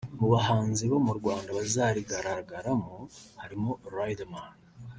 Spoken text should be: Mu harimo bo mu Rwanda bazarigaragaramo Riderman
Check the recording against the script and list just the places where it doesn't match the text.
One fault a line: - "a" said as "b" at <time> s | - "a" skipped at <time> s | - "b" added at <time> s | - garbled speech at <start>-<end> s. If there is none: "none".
- "harimo" said as "bahanzi" at 0.3 s
- "harimo" added at 3.4 s